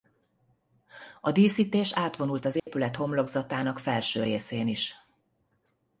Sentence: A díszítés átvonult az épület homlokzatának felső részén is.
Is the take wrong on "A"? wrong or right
right